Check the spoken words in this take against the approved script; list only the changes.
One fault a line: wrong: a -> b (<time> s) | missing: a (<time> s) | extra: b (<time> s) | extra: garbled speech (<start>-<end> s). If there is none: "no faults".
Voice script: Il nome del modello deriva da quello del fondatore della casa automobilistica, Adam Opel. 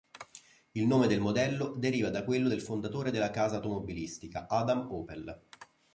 no faults